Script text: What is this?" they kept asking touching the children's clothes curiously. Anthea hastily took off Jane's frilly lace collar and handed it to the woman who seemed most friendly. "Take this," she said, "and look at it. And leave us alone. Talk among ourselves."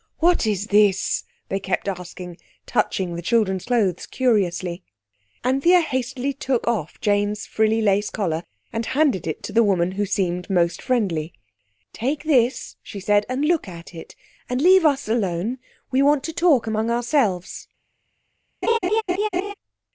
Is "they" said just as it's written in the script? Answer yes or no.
yes